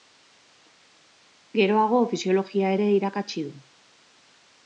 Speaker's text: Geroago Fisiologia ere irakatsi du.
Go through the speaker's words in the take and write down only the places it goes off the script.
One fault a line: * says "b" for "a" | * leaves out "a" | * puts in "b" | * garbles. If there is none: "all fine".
all fine